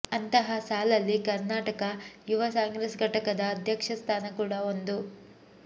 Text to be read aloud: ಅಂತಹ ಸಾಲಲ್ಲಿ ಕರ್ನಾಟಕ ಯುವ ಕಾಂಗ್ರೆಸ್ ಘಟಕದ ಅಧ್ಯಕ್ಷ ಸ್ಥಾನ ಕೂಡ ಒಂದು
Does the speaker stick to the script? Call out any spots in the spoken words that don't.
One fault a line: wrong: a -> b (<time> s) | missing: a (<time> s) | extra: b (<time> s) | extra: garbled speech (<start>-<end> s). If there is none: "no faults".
no faults